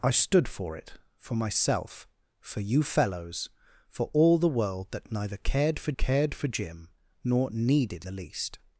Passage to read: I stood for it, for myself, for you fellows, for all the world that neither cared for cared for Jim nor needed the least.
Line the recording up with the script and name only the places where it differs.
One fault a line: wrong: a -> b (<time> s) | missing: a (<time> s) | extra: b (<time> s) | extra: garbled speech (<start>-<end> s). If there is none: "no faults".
no faults